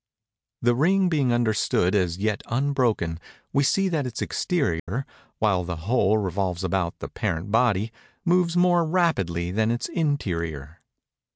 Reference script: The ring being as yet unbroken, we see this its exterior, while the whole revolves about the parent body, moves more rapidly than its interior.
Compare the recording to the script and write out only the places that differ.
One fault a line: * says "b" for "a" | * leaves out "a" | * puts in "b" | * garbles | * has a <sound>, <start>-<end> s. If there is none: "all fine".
* puts in "understood"
* says "that" for "this"
* has a dropout, 4.8-4.9 s